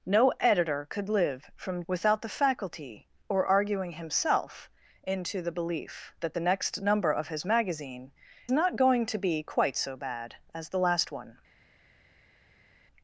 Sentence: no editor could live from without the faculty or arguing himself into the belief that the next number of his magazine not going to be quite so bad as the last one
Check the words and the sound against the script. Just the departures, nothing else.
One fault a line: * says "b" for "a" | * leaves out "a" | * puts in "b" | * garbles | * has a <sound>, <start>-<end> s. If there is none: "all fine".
all fine